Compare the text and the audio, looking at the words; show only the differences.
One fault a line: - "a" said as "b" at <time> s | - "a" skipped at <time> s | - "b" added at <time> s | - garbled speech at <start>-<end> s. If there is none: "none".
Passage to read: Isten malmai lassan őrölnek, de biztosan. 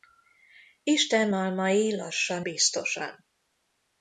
- "őrölnek de" skipped at 2.4 s